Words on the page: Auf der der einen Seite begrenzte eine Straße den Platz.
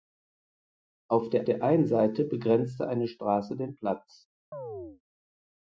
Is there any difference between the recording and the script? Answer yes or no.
no